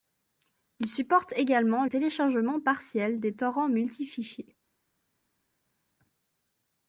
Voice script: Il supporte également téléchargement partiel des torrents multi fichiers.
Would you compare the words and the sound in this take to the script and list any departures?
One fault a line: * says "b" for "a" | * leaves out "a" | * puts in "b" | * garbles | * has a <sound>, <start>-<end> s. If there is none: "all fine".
all fine